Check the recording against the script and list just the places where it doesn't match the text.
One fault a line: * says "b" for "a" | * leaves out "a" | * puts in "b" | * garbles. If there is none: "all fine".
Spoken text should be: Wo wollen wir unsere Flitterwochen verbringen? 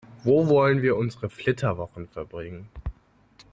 all fine